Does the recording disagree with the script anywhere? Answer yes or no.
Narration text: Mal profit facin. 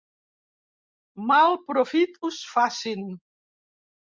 yes